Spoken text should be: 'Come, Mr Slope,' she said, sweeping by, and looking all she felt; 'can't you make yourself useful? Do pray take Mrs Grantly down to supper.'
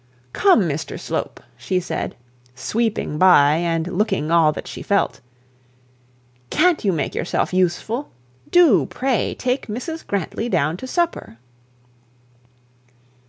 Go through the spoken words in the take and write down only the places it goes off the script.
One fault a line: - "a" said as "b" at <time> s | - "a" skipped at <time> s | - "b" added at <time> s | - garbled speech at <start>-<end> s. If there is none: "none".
- "that" added at 4.5 s